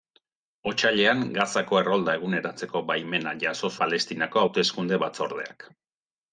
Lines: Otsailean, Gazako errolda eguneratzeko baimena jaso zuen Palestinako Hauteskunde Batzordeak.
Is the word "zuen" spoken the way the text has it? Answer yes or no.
no